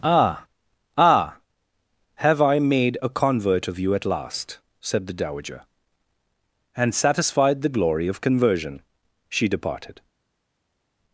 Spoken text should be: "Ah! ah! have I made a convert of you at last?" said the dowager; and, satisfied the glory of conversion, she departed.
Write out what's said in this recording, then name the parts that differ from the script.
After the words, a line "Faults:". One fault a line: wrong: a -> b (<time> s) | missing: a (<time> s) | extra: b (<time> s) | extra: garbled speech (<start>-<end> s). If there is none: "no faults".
"Ah! ah! have I made a convert of you at last?" said the dowager; and, satisfied the glory of conversion, she departed.
Faults:
no faults